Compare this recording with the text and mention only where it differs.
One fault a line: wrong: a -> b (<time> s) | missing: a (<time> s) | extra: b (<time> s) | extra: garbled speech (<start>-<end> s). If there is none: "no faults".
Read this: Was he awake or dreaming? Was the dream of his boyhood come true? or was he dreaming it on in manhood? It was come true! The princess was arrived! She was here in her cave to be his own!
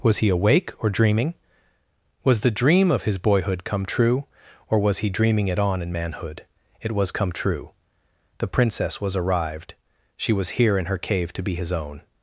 no faults